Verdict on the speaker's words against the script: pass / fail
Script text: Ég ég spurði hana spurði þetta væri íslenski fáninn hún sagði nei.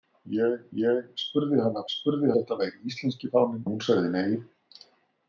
pass